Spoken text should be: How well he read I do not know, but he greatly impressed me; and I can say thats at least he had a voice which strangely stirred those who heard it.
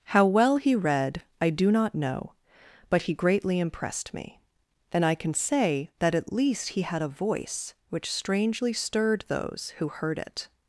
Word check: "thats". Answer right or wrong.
wrong